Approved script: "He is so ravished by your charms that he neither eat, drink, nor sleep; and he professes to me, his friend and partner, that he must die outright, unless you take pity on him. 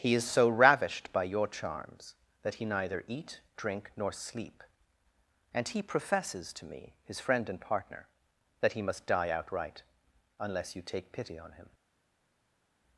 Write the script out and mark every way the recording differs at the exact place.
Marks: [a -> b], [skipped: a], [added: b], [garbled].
"He is so ravished by your charms that he neither eat, drink, nor sleep; and he professes to me, his friend and partner, that he must die outright, unless you take pity on him.